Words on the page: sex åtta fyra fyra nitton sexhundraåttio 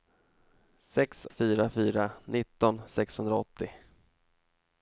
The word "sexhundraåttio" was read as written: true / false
true